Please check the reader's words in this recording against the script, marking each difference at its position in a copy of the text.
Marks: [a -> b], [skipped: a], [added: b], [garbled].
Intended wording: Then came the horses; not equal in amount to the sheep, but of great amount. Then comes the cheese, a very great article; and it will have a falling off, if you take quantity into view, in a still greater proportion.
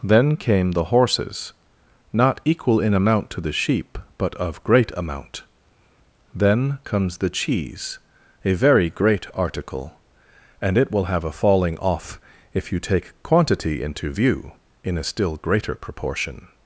Then came the horses; not equal in amount to the sheep, but of great amount. Then comes the cheese, a very great article; and it will have a falling off, if you take quantity into view, in a still greater proportion.